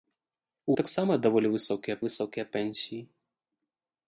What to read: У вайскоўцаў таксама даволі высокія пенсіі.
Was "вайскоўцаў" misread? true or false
true